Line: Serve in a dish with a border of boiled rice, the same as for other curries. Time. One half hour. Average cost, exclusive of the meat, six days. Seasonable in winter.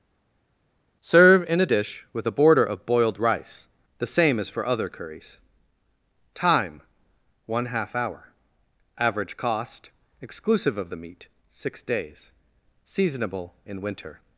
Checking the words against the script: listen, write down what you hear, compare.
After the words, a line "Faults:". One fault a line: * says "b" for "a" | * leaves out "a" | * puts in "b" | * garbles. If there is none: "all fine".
Serve in a dish with a border of boiled rice, the same as for other curries. Time. One half hour. Average cost, exclusive of the meat, six days. Seasonable in winter.
Faults:
all fine